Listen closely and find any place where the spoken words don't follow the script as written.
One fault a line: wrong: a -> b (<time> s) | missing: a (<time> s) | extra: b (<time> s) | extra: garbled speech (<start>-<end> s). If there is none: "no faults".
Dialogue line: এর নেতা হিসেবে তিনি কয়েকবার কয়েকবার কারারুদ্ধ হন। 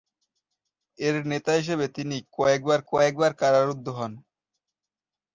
no faults